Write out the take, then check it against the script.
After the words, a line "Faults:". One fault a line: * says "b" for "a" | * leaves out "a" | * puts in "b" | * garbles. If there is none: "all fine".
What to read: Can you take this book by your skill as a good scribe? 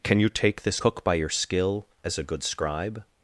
Can you take this cook by your skill as a good scribe?
Faults:
* says "cook" for "book"